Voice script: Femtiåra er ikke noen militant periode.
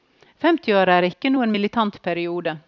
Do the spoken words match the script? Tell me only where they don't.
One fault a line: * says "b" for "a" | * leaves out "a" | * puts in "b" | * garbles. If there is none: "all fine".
all fine